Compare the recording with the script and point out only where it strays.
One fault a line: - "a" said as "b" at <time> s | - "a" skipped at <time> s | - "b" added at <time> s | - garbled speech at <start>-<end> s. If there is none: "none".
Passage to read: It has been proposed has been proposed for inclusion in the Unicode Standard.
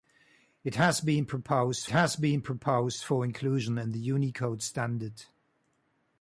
none